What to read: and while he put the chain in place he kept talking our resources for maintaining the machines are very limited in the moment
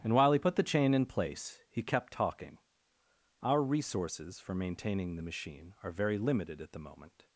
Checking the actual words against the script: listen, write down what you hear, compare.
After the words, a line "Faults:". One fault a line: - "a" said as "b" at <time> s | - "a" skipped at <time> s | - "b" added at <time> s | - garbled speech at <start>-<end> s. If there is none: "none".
and while he put the chain in place he kept talking our resources for maintaining the machine are very limited at the moment
Faults:
- "machines" said as "machine" at 5.2 s
- "in" said as "at" at 6.6 s